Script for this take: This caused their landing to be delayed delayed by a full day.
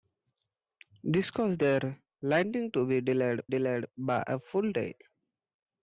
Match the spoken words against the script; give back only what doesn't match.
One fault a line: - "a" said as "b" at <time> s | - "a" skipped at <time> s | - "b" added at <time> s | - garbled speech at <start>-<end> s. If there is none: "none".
none